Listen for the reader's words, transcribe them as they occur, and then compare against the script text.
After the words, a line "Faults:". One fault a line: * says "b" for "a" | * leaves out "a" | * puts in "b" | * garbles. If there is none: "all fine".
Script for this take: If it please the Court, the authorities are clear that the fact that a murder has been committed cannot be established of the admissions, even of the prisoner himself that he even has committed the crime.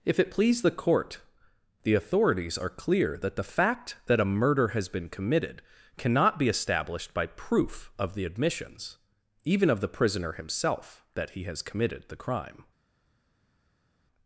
If it please the Court, the authorities are clear that the fact that a murder has been committed cannot be established by proof of the admissions, even of the prisoner himself that he has committed the crime.
Faults:
* puts in "by proof"
* leaves out "even"